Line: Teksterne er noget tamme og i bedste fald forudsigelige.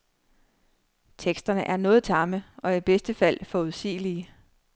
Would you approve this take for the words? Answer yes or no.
yes